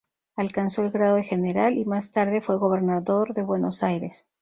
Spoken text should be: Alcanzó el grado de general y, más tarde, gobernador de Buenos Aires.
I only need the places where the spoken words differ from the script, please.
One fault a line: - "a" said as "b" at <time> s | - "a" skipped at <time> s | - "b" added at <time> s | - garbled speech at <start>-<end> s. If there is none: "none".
- "fue" added at 2.4 s